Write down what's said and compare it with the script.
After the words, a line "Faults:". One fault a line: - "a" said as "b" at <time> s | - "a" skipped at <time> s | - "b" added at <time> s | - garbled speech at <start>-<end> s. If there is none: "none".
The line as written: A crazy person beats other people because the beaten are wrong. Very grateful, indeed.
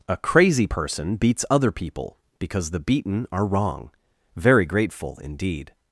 A crazy person beats other people because the beaten are wrong. Very grateful, indeed.
Faults:
none